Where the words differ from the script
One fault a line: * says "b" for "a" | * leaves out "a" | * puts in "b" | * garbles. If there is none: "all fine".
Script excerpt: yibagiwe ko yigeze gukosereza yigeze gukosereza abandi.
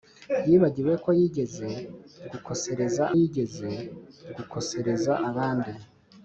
all fine